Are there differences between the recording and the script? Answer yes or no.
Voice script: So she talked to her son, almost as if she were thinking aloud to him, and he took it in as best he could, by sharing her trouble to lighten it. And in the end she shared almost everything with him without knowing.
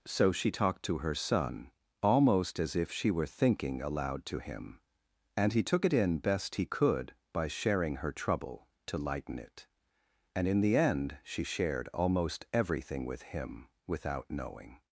yes